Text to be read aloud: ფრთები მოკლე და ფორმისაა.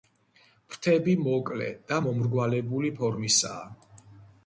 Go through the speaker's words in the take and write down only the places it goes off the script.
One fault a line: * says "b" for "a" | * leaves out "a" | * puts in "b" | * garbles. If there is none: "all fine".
* puts in "მომრგვალებული"